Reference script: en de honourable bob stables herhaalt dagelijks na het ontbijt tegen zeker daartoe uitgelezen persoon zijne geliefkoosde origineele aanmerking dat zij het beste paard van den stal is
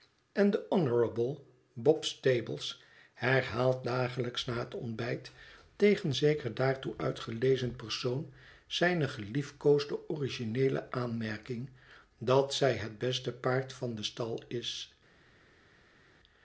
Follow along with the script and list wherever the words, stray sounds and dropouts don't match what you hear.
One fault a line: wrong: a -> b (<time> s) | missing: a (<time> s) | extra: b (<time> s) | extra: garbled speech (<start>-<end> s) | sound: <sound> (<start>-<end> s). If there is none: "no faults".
no faults